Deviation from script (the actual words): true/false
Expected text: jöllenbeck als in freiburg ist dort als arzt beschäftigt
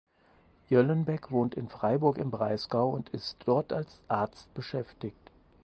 true